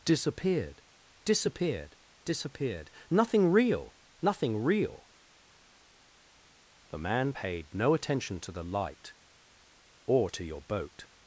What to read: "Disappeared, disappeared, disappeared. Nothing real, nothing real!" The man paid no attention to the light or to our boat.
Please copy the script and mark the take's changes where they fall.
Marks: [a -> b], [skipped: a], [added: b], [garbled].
"Disappeared, disappeared, disappeared. Nothing real, nothing real!" The man paid no attention to the light or to [our -> your] boat.